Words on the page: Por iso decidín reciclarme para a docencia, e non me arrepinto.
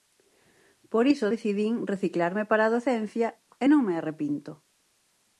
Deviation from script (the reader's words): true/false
false